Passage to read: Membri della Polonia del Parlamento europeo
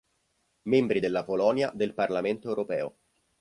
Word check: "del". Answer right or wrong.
right